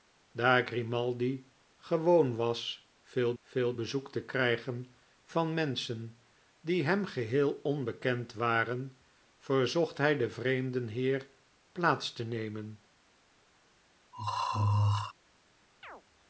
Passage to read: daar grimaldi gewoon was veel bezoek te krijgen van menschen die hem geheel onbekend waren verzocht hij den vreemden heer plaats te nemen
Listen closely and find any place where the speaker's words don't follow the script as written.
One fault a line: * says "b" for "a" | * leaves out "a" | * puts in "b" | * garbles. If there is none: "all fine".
* puts in "veel"